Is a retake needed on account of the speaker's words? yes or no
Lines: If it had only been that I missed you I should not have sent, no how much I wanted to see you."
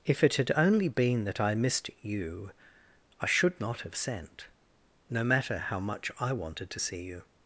yes